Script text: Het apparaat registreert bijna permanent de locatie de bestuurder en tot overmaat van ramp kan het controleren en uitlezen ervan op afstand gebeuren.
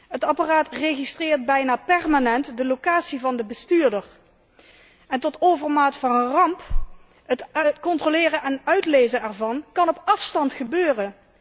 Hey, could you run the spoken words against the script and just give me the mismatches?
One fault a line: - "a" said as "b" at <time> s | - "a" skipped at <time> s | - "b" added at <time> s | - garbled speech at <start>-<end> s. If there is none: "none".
- "van" added at 3.2 s